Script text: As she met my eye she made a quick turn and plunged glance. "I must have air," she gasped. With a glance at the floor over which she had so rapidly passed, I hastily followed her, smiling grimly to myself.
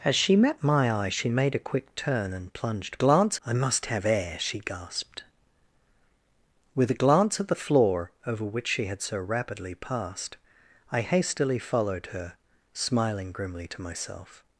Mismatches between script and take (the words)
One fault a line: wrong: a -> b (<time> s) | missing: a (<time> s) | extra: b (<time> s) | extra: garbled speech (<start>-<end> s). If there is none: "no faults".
no faults